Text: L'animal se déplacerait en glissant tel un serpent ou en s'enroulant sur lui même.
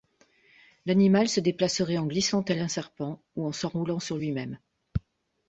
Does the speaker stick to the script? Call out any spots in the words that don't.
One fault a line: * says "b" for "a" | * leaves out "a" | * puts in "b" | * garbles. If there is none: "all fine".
all fine